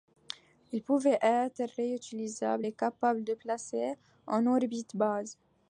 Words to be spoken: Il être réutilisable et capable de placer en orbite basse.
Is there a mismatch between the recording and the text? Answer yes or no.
yes